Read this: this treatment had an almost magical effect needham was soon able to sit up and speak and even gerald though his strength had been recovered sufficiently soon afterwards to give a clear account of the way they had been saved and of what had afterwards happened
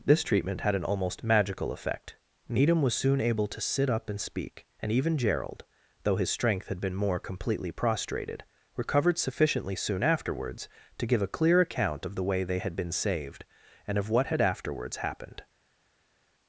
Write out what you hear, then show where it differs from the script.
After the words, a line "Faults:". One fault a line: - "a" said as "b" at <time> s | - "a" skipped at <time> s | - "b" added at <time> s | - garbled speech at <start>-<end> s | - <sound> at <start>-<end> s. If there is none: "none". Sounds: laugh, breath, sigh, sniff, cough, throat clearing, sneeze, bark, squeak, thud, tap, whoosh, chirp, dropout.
this treatment had an almost magical effect needham was soon able to sit up and speak and even gerald though his strength had been more completely prostrated recovered sufficiently soon afterwards to give a clear account of the way they had been saved and of what had afterwards happened
Faults:
- "more completely prostrated" added at 6.9 s